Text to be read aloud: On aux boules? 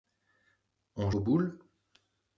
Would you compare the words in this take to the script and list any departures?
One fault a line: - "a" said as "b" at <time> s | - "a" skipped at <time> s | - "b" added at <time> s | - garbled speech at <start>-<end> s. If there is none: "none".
none